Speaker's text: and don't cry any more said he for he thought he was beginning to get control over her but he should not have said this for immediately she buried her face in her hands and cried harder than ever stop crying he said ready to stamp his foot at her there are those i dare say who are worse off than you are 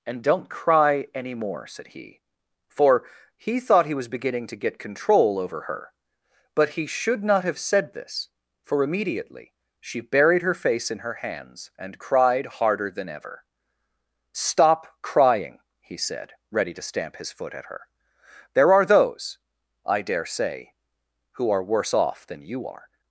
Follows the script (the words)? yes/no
yes